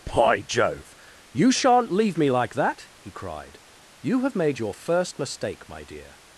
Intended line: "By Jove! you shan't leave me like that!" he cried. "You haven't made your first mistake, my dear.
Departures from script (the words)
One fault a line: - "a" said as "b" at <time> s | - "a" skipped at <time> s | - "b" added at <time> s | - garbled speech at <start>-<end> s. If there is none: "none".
- "haven't" said as "have" at 4.2 s